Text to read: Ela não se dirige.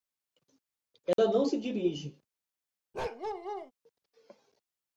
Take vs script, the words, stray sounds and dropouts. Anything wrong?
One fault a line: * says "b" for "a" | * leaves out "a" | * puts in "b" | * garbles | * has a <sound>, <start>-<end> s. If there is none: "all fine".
* has a dropout, 1.1-1.2 s
* has a bark, 2.9-3.7 s